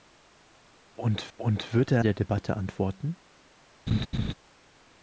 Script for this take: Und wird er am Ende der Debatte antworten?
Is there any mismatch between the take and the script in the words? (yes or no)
yes